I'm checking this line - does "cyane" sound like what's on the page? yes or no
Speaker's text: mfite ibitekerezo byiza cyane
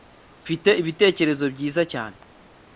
yes